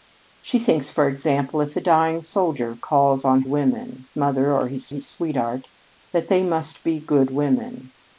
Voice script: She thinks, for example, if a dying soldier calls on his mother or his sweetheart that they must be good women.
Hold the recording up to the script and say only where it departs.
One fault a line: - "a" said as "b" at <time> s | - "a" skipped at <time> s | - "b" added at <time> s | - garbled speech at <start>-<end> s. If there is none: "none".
- "his" said as "women" at 3.5 s
- "his" added at 4.9 s